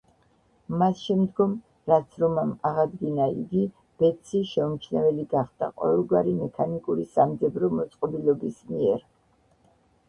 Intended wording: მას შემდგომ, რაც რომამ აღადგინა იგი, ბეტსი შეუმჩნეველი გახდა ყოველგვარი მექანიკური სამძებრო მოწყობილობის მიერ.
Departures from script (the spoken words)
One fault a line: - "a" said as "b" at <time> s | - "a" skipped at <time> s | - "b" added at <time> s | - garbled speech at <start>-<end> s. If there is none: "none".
none